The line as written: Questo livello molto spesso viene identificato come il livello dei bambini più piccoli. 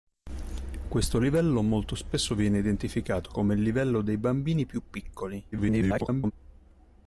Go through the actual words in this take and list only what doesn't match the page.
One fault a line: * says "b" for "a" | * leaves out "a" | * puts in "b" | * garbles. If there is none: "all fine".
* garbles